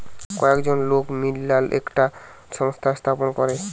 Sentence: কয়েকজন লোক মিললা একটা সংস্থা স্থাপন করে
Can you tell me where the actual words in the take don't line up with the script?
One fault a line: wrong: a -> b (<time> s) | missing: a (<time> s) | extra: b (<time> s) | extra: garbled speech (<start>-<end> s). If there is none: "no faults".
no faults